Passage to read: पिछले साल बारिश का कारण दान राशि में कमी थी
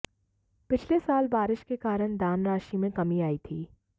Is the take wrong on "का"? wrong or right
wrong